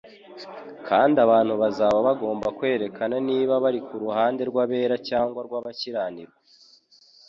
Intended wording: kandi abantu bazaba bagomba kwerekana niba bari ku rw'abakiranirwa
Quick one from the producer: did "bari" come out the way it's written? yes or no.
yes